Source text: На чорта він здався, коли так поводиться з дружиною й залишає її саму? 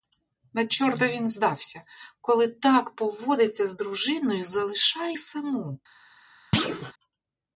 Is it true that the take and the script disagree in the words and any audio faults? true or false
true